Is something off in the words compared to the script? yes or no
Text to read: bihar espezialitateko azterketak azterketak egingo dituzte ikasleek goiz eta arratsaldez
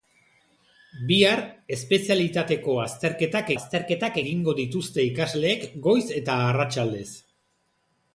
no